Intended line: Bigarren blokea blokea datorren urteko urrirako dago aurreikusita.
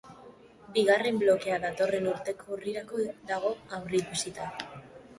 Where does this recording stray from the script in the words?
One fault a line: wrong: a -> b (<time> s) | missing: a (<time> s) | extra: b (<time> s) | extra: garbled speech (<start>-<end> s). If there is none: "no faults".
missing: blokea (1.6 s)